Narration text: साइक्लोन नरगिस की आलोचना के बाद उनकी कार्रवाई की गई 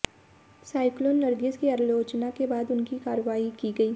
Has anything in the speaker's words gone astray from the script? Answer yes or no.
no